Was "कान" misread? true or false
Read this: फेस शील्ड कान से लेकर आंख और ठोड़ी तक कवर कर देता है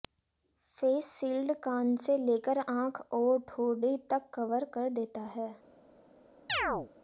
false